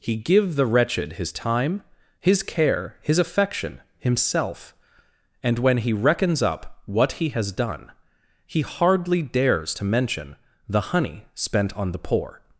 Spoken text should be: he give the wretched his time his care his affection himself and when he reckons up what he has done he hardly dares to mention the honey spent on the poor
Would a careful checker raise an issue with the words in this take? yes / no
no